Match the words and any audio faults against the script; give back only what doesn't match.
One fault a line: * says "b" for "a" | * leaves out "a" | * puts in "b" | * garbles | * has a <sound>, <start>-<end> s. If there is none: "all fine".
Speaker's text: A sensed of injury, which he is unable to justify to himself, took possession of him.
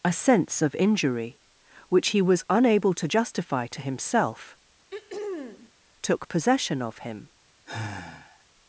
* says "sense" for "sensed"
* says "was" for "is"
* has a throat clearing, 4.9-5.7 s
* has a sigh, 7.7-8.5 s